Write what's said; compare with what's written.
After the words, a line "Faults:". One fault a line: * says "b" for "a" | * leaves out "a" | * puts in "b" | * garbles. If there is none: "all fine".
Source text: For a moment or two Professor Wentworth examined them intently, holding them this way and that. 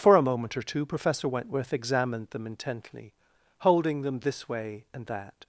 For a moment or two Professor Wentworth examined them intently, holding them this way and that.
Faults:
all fine